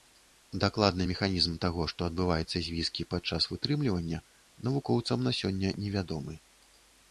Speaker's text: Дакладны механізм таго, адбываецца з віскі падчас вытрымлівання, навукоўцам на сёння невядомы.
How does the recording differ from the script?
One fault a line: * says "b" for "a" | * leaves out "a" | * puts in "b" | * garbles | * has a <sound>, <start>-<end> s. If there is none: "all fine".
* puts in "што"